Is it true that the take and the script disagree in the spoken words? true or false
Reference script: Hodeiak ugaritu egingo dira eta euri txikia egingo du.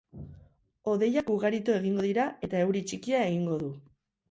false